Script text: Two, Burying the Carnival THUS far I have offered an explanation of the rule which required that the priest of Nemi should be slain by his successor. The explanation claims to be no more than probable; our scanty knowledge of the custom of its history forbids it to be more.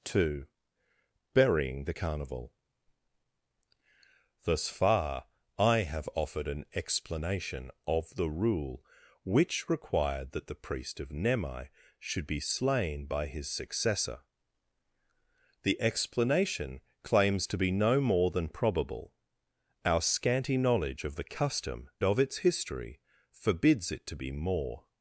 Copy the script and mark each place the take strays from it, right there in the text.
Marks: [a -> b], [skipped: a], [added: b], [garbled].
Two, Burying the Carnival THUS far I have offered an explanation of the rule which required that the priest of Nemi should be slain by his successor. The explanation claims to be no more than probable; our scanty knowledge of the custom of its history forbids it to be more.